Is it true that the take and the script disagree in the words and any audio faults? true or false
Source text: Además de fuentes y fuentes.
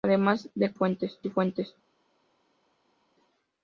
false